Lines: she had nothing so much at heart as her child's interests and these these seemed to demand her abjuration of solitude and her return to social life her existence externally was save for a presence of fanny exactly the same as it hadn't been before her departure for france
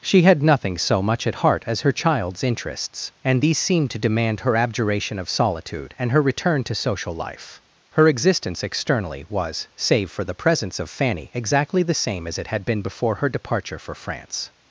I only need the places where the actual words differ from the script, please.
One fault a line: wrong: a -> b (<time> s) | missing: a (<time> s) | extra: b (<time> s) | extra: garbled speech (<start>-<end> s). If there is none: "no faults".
missing: these (3.6 s)
wrong: a -> the (10.2 s)
wrong: hadn't -> had (12.5 s)